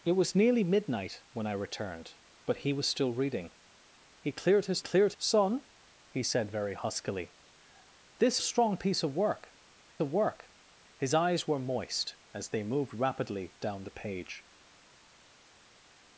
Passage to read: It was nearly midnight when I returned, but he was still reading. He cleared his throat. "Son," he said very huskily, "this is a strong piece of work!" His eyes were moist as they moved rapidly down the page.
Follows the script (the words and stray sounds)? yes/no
no